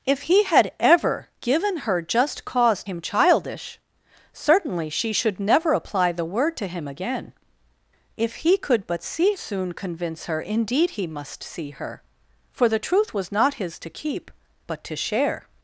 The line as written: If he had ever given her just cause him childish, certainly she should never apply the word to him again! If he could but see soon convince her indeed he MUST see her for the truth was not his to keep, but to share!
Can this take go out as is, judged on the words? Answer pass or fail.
pass